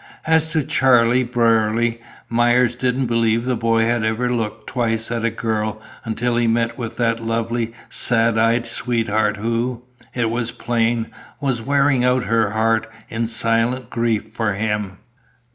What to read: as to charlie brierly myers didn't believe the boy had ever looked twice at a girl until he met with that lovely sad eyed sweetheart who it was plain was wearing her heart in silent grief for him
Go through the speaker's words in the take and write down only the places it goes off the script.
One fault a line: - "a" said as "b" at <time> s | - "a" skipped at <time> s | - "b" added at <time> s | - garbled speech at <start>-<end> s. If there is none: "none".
- "out" added at 12.0 s